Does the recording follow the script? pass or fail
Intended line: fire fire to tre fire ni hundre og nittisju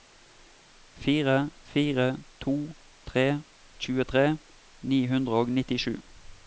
fail